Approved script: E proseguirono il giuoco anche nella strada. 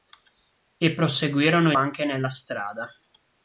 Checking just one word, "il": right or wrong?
wrong